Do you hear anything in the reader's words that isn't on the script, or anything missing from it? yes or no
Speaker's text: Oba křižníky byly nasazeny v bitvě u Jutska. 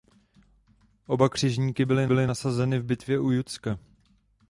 yes